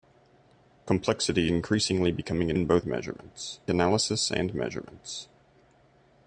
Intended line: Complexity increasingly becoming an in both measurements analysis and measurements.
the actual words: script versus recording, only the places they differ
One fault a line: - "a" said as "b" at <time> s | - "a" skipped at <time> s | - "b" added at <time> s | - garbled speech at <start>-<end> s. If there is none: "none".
none